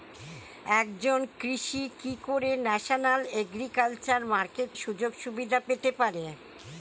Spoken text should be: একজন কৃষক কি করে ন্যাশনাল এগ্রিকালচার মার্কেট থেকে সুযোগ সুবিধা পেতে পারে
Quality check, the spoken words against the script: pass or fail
fail